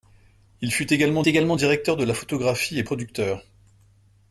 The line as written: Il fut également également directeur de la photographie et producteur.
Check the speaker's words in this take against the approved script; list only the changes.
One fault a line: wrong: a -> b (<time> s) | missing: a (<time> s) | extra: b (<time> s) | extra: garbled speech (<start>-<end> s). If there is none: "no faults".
no faults